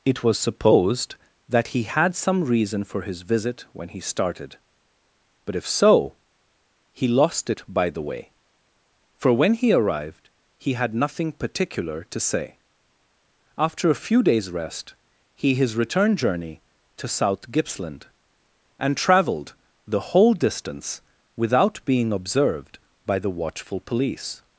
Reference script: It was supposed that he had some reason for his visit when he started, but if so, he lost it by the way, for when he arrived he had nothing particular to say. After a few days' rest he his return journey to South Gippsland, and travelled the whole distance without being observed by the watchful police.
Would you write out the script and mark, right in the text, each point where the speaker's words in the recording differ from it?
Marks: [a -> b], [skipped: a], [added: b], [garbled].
It was supposed that he had some reason for his visit when he started, but if so, he lost it by the way, for when he arrived he had nothing particular to say. After a few days' rest he his return journey to South Gippsland, and travelled the whole distance without being observed by the watchful police.